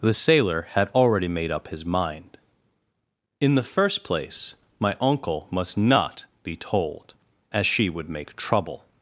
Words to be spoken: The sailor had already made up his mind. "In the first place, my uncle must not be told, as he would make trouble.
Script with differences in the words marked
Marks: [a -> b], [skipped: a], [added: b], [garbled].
The sailor had already made up his mind. "In the first place, my uncle must not be told, as [he -> she] would make trouble.